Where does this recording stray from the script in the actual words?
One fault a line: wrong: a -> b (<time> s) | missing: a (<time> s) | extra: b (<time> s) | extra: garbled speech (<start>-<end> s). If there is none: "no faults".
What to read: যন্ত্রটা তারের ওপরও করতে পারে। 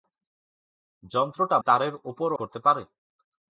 no faults